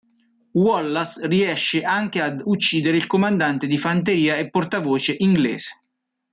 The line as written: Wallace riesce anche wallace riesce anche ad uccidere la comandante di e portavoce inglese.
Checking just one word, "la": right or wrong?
wrong